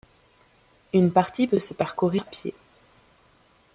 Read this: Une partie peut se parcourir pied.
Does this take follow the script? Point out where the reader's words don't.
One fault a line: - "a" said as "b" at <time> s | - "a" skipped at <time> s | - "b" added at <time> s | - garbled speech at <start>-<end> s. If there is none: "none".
none